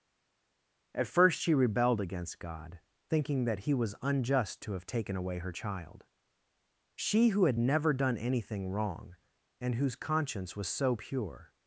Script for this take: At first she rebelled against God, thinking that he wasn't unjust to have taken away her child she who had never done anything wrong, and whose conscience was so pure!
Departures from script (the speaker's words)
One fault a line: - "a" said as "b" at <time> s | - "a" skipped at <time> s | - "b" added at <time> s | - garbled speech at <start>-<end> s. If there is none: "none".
- "wasn't" said as "was" at 3.7 s